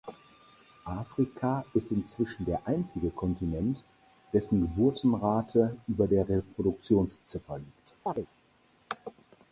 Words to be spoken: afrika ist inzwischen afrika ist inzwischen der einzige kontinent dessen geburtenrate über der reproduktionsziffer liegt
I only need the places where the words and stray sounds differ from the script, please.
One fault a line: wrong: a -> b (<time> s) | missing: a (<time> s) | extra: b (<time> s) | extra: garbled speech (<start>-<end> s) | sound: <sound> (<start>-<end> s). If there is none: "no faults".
missing: afrika ist inzwischen (2.5 s)
sound: chirp (8.1-8.3 s)